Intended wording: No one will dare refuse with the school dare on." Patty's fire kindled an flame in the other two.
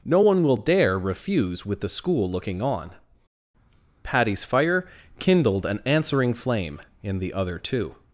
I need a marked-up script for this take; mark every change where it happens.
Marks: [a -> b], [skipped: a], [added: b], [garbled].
No one will dare refuse with the school [dare -> looking] on." Patty's fire kindled an [added: answering] flame in the other two.